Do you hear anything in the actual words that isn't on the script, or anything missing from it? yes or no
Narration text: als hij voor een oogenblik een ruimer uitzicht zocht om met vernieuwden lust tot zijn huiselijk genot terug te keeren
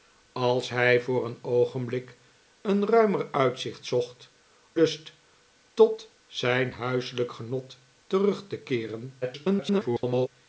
yes